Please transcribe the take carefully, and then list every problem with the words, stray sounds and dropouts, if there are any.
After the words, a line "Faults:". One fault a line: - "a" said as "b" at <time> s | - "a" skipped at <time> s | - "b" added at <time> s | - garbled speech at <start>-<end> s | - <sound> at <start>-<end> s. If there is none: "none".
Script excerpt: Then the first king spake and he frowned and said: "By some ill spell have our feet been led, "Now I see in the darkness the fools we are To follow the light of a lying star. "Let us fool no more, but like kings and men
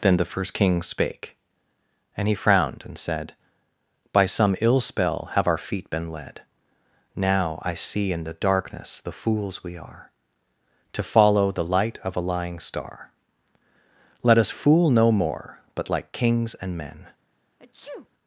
Then the first king spake and he frowned and said: "By some ill spell have our feet been led, "Now I see in the darkness the fools we are To follow the light of a lying star. "Let us fool no more, but like kings and men
Faults:
- sneeze at 17.6-18.1 s